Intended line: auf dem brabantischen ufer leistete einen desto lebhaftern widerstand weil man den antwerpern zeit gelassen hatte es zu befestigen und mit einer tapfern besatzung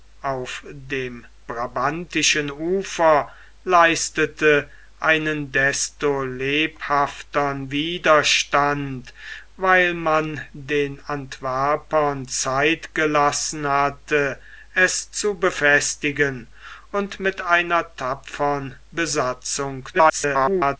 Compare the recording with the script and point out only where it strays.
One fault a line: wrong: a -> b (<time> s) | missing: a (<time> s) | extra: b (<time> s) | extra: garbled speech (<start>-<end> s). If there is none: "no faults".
extra: garbled speech (19.9-20.8 s)